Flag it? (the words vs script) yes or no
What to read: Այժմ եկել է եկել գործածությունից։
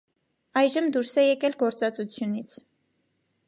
yes